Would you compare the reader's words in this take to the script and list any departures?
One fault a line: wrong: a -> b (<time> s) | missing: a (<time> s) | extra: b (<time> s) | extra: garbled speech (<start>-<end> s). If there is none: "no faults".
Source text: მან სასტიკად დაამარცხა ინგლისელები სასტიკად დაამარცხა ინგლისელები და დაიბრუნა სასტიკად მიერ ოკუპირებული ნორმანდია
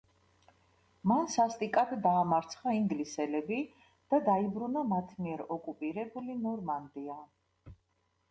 missing: სასტიკად დაამარცხა ინგლისელები (3.6 s)
wrong: სასტიკად -> მათ (4.9 s)